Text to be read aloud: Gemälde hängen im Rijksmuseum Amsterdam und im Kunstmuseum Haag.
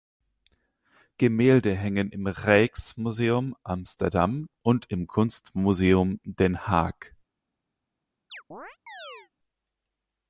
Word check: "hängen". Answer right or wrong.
right